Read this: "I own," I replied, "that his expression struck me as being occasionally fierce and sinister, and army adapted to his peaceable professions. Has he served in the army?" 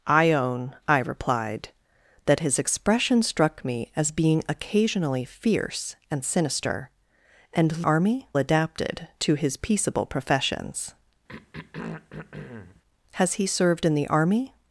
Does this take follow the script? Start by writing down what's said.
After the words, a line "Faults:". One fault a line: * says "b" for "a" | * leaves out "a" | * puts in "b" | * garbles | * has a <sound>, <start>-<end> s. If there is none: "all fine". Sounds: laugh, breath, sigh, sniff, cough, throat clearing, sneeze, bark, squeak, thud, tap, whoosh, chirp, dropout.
"I own," I replied, "that his expression struck me as being occasionally fierce and sinister, and army adapted to his peaceable professions. Has he served in the army?"
Faults:
* has a throat clearing, 11.3-12.8 s